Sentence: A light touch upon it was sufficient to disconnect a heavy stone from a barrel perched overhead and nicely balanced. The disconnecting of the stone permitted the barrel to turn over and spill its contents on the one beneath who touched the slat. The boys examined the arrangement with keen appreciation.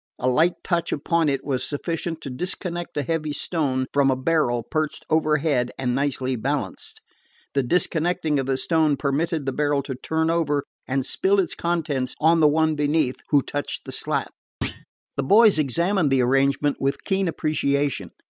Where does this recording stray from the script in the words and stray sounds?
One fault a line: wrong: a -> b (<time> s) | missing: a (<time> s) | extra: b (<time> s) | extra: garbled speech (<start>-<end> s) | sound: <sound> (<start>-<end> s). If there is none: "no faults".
sound: thud (14.6-14.9 s)